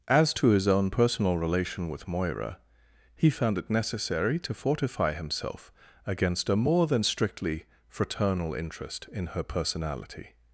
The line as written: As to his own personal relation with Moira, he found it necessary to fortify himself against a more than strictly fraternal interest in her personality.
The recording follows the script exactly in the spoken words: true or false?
true